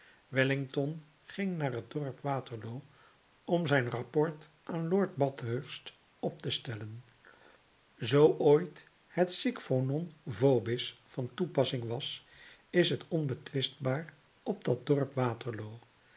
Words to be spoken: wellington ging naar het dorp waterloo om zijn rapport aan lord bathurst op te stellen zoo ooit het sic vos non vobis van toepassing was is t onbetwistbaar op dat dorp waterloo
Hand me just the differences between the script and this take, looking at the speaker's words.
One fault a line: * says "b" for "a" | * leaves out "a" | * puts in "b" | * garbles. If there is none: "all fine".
all fine